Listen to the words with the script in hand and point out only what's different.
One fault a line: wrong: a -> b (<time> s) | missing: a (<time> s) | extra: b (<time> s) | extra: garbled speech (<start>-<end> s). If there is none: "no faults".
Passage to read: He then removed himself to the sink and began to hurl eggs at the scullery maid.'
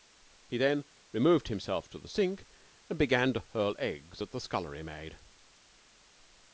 no faults